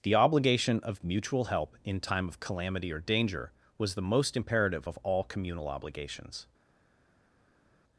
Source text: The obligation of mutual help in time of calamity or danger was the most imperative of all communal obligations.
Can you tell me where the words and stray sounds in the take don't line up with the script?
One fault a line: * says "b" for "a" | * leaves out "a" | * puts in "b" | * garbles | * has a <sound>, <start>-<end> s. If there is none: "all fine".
all fine